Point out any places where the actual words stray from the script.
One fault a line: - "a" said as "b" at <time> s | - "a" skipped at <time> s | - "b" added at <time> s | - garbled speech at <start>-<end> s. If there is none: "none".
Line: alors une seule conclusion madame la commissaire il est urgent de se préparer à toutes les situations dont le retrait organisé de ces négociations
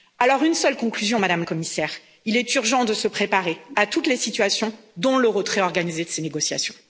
- "la" skipped at 1.4 s